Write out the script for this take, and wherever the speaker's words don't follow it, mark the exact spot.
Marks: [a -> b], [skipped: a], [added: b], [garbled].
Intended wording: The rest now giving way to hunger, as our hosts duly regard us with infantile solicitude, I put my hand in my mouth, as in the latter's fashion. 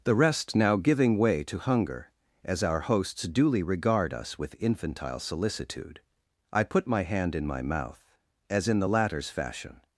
The rest now giving way to hunger, as our hosts duly regard us with infantile solicitude, I put my hand in my mouth, as in the latter's fashion.